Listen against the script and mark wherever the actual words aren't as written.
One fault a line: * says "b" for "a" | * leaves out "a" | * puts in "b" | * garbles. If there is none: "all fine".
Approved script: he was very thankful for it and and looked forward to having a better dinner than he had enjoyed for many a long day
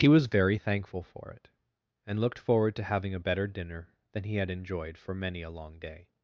* leaves out "and"